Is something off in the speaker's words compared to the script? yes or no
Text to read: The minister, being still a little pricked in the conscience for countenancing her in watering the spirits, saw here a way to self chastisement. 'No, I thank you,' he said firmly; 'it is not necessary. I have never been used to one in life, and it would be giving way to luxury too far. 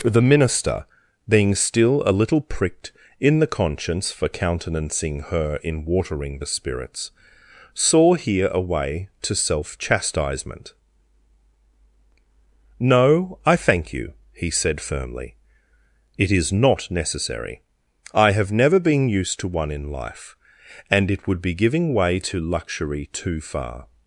no